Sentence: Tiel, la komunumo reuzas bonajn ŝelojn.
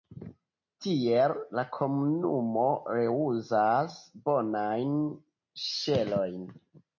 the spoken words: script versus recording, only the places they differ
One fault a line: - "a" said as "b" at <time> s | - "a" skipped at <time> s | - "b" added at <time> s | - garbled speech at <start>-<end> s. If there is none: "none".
none